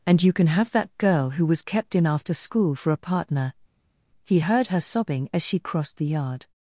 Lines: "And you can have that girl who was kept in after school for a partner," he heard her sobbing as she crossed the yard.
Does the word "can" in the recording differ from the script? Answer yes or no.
no